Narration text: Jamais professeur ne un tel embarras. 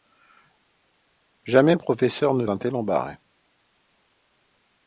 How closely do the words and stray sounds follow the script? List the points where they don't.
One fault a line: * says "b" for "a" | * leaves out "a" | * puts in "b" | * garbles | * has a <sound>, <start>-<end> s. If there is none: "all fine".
all fine